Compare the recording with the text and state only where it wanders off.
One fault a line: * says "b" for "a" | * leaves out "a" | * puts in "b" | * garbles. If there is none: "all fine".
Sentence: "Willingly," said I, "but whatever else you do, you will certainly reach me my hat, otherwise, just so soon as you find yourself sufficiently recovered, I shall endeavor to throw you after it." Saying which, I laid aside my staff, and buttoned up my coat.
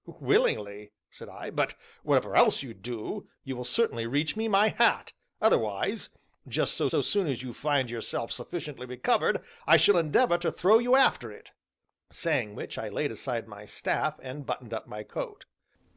* puts in "so"